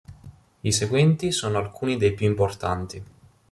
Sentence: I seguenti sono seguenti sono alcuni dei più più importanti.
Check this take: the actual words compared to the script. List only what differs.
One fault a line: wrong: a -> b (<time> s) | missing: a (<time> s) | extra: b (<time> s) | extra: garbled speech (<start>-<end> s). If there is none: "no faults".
missing: seguenti sono (1.6 s)
missing: più (2.3 s)